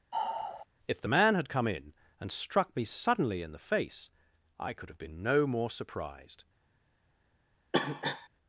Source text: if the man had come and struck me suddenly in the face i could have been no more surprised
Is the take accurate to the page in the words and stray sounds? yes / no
no